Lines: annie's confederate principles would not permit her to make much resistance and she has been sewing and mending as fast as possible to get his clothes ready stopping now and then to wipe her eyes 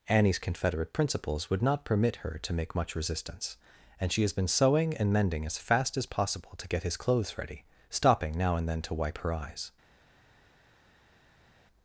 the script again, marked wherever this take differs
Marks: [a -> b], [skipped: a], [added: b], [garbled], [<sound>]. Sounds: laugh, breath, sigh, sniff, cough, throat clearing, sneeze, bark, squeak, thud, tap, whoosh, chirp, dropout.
annie's confederate principles would not permit her to make much resistance and she has been sewing and mending as fast as possible to get his clothes ready stopping now and then to wipe her eyes